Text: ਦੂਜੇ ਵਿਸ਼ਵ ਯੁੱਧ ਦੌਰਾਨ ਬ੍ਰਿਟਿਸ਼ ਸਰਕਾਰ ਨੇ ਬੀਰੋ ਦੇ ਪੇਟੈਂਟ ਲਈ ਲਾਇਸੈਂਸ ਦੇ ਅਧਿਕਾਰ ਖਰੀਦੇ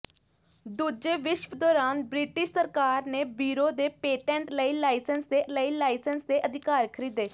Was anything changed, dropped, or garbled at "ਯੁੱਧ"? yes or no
yes